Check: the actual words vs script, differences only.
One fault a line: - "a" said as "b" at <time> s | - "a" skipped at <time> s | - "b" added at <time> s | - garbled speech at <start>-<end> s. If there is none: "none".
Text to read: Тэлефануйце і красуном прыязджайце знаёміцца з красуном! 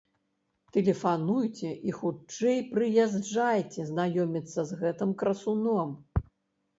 - "красуном" said as "хутчэй" at 2.0 s
- "гэтым" added at 4.8 s